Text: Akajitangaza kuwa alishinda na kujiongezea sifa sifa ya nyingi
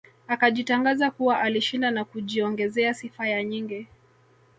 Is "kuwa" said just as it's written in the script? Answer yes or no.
yes